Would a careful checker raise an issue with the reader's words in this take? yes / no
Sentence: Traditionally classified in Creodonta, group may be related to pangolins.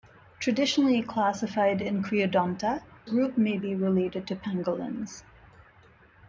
no